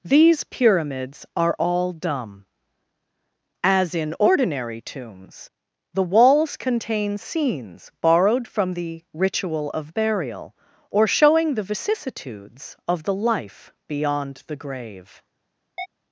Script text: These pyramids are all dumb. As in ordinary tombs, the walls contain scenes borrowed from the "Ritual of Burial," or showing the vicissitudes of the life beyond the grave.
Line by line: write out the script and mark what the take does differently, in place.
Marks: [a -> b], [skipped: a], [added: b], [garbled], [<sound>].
These pyramids are all dumb. As in ordinary tombs, the walls contain scenes borrowed from the "Ritual of Burial," or showing the vicissitudes of the life beyond the grave. [chirp]